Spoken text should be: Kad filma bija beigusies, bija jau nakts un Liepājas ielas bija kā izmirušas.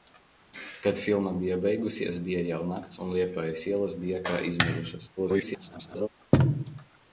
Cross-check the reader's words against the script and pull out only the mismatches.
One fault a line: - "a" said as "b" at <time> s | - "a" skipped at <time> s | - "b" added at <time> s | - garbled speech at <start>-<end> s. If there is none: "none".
- garbled speech at 5.2-6.1 s